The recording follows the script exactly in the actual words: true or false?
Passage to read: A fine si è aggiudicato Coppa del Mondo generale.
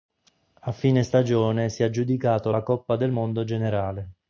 false